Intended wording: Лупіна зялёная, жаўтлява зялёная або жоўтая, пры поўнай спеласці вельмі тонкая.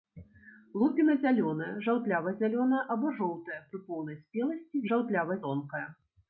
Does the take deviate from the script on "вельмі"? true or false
true